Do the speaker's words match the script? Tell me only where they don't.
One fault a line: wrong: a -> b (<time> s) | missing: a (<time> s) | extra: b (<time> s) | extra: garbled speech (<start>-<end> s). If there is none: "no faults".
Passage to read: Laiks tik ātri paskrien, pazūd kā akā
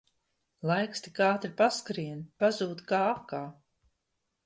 no faults